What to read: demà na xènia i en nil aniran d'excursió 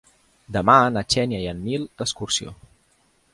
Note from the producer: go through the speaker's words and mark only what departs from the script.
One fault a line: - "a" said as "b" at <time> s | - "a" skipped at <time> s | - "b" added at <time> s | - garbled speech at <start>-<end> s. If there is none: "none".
- "aniran" skipped at 1.9 s